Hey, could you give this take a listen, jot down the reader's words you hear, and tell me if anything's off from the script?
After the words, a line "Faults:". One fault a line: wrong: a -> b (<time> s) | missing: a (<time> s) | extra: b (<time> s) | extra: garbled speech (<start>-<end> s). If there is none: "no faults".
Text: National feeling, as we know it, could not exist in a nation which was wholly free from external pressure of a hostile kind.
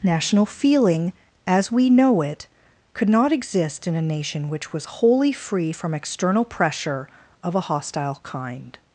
National feeling, as we know it, could not exist in a nation which was wholly free from external pressure of a hostile kind.
Faults:
no faults